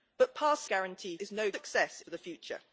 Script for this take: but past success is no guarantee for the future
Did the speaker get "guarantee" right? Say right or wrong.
wrong